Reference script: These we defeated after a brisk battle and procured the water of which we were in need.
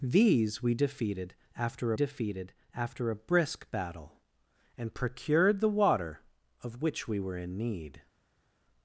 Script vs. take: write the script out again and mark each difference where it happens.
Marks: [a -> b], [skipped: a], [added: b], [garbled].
These we defeated after [added: defeated after] a brisk battle and procured the water of which we were in need.